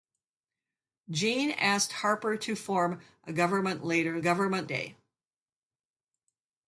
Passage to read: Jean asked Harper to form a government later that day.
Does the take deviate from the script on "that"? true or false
true